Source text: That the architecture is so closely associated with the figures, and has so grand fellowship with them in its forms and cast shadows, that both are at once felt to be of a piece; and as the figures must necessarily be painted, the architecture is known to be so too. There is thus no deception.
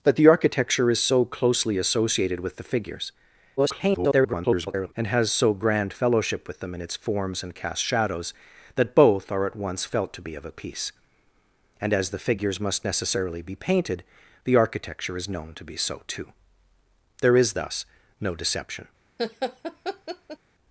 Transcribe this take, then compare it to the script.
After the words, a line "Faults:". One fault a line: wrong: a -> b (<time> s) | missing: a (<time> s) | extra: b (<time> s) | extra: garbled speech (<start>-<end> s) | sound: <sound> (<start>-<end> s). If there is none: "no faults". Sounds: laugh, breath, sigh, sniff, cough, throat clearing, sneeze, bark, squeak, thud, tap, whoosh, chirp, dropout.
That the architecture is so closely associated with the figures, [garbled] and has so grand fellowship with them in its forms and cast shadows, that both are at once felt to be of a piece; and as the figures must necessarily be painted, the architecture is known to be so too. There is thus no deception.
Faults:
extra: garbled speech (3.6-4.9 s)
sound: laugh (19.2-20.4 s)